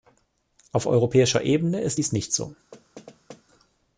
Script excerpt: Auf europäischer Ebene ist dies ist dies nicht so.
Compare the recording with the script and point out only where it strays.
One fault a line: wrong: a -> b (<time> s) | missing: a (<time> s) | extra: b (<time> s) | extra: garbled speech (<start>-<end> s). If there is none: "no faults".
missing: ist dies (2.1 s)